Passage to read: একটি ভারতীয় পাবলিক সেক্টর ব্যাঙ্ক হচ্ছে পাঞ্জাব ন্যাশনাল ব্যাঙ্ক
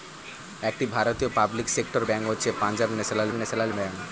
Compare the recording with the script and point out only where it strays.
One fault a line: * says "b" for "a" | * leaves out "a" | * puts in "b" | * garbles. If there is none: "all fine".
* puts in "ন্যাশনাল"